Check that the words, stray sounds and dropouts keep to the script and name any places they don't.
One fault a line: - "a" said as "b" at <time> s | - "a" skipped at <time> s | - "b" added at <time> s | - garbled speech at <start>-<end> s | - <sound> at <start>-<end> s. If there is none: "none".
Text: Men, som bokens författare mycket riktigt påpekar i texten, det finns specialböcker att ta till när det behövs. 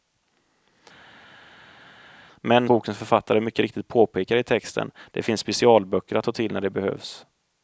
- "som" skipped at 2.7 s